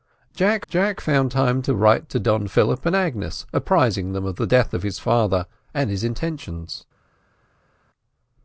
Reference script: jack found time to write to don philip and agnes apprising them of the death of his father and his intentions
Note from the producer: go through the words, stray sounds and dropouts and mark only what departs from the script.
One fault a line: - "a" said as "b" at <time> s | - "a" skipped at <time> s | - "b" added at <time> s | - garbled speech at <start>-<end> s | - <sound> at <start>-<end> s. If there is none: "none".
- "jack" added at 0.7 s